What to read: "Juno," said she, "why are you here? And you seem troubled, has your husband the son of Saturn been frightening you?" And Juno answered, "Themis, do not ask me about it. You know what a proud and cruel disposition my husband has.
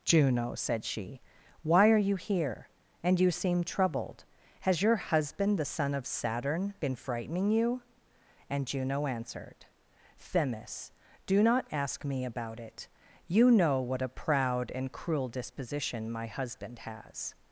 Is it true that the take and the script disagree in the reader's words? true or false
false